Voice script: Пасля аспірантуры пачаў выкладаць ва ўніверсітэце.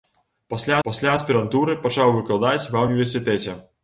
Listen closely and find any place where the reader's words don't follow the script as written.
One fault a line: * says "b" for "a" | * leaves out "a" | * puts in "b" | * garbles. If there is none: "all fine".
* puts in "пасля"